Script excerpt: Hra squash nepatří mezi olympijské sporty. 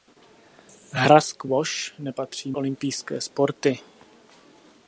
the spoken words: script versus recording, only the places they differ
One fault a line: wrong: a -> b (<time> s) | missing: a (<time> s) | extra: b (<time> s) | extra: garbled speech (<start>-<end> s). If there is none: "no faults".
missing: mezi (2.5 s)